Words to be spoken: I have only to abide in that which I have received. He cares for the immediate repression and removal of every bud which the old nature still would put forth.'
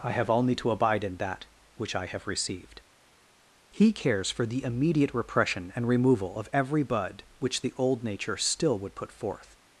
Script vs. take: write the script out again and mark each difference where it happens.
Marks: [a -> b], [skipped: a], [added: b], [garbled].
I have only to abide in that which I have received. He cares for the immediate repression and removal of every bud which the old nature still would put forth.'